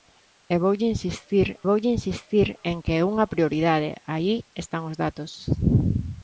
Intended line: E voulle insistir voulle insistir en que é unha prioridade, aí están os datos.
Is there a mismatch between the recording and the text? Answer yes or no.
no